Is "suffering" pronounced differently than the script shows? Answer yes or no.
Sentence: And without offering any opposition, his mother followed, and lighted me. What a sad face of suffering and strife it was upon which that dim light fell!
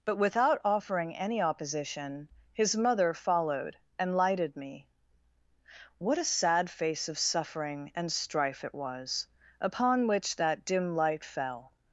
no